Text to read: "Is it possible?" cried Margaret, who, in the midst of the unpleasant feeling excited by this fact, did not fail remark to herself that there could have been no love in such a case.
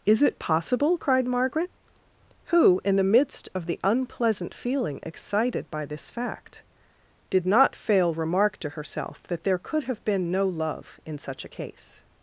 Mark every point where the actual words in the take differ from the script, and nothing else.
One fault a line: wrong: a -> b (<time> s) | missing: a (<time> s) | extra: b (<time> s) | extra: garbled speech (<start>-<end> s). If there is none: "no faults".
no faults